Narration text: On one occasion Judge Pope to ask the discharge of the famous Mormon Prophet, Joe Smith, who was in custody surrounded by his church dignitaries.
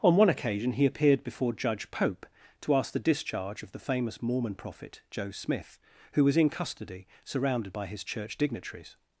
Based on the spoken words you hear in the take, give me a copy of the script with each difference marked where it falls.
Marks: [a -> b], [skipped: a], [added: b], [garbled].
On one occasion [added: he appeared before] Judge Pope to ask the discharge of the famous Mormon Prophet, Joe Smith, who was in custody surrounded by his church dignitaries.